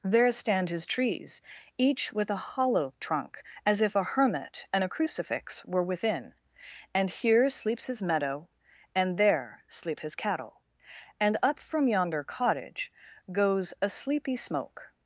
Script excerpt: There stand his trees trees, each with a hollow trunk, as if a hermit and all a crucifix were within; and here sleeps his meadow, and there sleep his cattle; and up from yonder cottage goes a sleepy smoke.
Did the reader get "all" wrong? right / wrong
wrong